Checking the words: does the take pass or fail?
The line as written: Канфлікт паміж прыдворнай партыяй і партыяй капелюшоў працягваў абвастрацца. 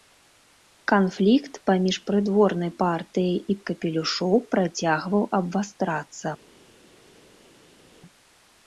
fail